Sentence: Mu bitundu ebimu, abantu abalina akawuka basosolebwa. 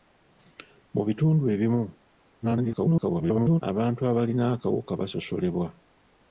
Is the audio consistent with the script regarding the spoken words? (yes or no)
no